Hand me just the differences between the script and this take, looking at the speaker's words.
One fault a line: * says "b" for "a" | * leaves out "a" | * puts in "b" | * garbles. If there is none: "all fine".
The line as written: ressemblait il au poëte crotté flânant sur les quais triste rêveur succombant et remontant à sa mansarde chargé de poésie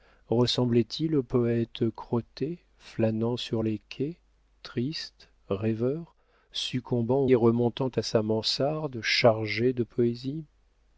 all fine